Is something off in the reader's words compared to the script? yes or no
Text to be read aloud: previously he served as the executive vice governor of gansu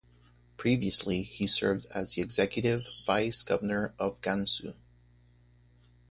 no